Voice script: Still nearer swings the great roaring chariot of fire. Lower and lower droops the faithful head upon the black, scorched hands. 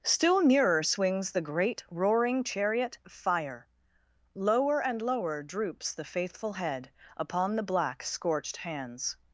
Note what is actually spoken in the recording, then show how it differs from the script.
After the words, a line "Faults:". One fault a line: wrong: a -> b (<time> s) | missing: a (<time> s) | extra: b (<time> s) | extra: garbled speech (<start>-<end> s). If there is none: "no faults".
Still nearer swings the great roaring chariot fire. Lower and lower droops the faithful head upon the black, scorched hands.
Faults:
missing: of (3.0 s)